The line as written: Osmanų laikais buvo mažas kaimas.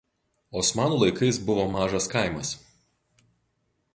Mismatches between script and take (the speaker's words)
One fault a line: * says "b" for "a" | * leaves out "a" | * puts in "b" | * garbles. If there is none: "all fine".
all fine